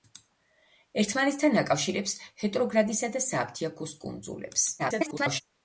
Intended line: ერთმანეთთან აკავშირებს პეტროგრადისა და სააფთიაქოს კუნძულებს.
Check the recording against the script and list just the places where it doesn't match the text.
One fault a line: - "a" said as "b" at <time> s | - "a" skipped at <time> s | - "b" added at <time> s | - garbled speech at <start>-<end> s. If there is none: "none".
- garbled speech at 4.8-5.4 s